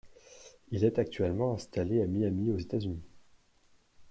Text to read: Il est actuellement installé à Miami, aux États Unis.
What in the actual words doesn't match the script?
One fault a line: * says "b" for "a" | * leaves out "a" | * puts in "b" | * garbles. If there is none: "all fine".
all fine